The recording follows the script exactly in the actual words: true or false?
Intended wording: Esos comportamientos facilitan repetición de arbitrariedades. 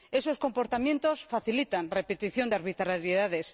true